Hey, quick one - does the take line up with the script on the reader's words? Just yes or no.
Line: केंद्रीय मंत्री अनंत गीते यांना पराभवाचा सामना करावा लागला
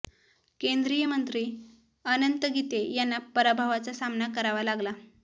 yes